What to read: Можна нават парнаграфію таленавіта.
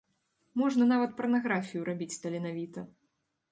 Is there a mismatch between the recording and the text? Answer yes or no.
yes